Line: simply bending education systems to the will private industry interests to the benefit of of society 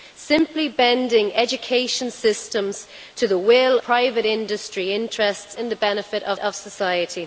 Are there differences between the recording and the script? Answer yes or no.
no